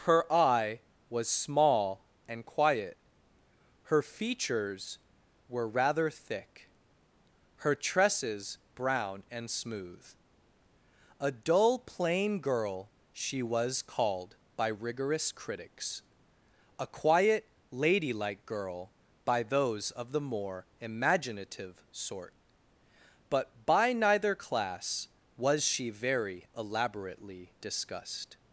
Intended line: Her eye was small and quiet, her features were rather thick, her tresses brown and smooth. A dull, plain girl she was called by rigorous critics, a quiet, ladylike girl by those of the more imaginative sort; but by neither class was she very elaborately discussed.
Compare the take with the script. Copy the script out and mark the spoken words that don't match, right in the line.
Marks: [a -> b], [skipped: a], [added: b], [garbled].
Her eye was small and quiet, her features were rather thick, her tresses brown and smooth. A dull, plain girl she was called by rigorous critics, a quiet, ladylike girl by those of the more imaginative sort; but by neither class was she very elaborately discussed.